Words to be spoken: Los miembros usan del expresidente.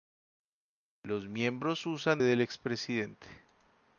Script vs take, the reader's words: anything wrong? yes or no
no